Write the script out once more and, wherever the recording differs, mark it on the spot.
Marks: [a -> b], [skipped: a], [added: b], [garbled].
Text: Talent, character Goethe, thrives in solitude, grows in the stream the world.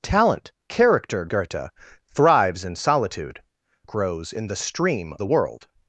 Talent, character Goethe, thrives in solitude, grows in the stream the world.